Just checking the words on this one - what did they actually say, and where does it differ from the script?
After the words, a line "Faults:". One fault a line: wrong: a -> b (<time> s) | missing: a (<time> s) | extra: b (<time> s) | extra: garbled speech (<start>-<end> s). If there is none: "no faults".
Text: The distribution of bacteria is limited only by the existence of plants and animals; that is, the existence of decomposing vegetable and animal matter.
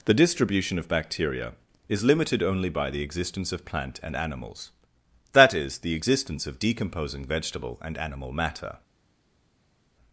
The distribution of bacteria is limited only by the existence of plant and animals; that is, the existence of decomposing vegetable and animal matter.
Faults:
wrong: plants -> plant (3.6 s)